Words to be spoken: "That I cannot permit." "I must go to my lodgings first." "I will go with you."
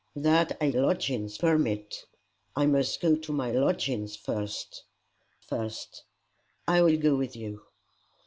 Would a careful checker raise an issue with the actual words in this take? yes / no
yes